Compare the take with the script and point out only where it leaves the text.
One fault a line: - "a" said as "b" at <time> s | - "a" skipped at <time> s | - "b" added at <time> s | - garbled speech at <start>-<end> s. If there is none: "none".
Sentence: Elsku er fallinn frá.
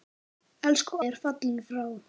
none